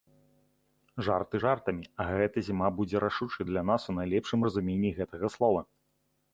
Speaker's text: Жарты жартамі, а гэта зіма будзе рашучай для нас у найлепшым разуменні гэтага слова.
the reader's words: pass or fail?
pass